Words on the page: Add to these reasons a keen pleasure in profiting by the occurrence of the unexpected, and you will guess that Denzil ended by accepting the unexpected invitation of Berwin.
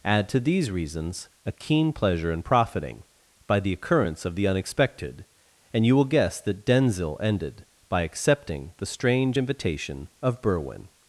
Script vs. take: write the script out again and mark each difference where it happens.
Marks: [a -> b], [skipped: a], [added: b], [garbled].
Add to these reasons a keen pleasure in profiting by the occurrence of the unexpected, and you will guess that Denzil ended by accepting the [unexpected -> strange] invitation of Berwin.